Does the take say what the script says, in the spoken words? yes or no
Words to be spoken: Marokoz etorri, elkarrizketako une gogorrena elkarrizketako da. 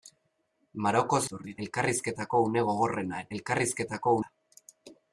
yes